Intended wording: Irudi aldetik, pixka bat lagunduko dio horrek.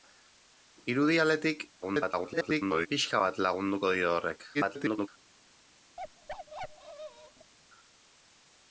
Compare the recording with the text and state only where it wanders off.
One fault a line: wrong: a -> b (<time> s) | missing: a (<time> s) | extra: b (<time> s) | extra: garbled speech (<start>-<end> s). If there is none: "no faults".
extra: garbled speech (1.8-2.9 s)
extra: garbled speech (4.5-5.1 s)